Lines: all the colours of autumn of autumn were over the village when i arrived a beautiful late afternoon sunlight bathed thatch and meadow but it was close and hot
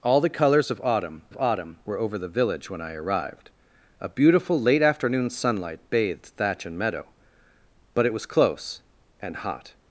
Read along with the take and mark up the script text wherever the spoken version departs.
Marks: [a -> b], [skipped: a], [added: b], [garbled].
all the colours of autumn of autumn were over the village when i arrived a beautiful late afternoon sunlight bathed thatch and meadow but it was close and hot